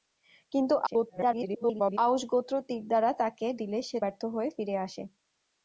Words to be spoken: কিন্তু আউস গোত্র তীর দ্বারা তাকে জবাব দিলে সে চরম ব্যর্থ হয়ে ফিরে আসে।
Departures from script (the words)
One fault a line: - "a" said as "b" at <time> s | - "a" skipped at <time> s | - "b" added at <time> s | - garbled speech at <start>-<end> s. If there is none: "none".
- garbled speech at 0.9-2.0 s
- "জবাব" skipped at 3.5 s
- "চরম" skipped at 4.0 s